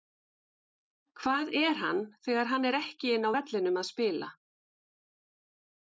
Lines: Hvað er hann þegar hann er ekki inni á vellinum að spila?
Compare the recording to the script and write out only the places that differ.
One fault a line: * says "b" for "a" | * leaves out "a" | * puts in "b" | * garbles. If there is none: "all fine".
all fine